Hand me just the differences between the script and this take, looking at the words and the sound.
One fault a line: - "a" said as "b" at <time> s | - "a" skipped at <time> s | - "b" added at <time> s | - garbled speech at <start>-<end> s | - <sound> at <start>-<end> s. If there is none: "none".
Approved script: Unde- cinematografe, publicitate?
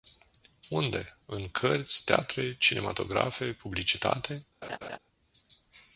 - "în cărți teatre" added at 1.2 s
- laugh at 4.6-5.0 s